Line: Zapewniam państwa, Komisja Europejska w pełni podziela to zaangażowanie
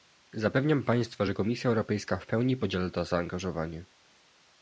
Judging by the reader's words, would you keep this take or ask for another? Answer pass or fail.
fail